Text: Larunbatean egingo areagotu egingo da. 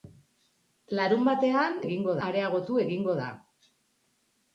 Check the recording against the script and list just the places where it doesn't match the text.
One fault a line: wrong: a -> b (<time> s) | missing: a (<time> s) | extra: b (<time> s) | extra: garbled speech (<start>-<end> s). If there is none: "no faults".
no faults